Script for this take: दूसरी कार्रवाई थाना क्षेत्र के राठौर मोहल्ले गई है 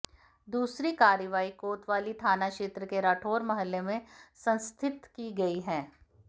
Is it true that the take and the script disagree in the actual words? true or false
true